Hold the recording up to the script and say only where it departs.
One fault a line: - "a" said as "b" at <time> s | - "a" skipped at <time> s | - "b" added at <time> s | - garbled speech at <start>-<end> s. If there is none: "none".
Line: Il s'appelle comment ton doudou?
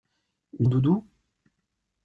- "s'appelle comment ton" skipped at 0.7 s